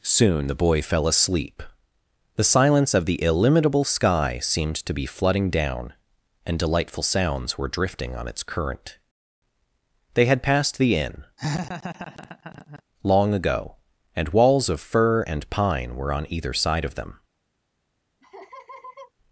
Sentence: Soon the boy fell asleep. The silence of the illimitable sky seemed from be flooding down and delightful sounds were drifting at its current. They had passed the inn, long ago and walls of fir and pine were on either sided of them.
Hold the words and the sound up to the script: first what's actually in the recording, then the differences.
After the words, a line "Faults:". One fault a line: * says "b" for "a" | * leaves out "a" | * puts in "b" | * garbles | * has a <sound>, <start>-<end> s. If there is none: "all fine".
Soon the boy fell asleep. The silence of the illimitable sky seemed to be flooding down and delightful sounds were drifting on its current. They had passed the inn, long ago and walls of fir and pine were on either side of them.
Faults:
* says "to" for "from"
* says "on" for "at"
* has a laugh, 11.4-12.8 s
* says "side" for "sided"
* has a laugh, 18.2-19.1 s